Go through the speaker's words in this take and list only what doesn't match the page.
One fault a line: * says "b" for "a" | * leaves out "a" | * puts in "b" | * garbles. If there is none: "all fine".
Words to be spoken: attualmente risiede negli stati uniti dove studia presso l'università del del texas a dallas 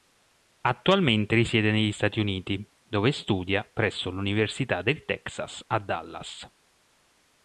* leaves out "del"